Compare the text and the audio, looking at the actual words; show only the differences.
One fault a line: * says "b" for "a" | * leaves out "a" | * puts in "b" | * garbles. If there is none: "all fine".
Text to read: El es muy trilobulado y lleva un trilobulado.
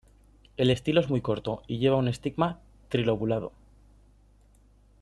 * puts in "estilo"
* says "corto" for "trilobulado"
* puts in "estigma"